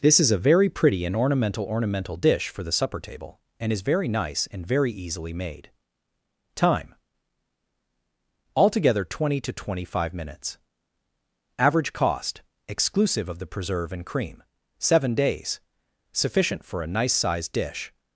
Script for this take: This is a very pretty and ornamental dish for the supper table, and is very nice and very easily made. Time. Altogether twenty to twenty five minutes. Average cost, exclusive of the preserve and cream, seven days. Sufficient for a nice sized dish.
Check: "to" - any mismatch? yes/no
no